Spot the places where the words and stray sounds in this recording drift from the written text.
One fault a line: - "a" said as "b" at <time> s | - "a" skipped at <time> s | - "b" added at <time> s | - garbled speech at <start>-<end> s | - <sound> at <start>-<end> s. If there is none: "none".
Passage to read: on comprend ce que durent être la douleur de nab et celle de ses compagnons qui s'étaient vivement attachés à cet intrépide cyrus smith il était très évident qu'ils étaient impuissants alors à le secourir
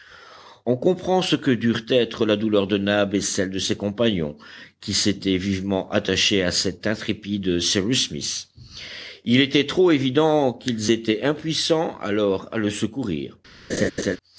- "très" said as "trop" at 9.7 s
- laugh at 13.7-14.2 s